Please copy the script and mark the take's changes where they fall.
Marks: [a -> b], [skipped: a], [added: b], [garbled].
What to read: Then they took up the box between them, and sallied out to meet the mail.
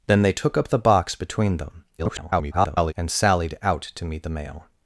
Then they took up the box between them, [garbled] and sallied out to meet the mail.